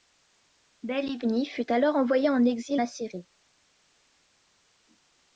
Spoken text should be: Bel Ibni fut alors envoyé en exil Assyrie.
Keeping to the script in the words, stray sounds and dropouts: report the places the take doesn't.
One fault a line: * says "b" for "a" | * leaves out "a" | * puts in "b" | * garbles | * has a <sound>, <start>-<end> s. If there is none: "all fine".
all fine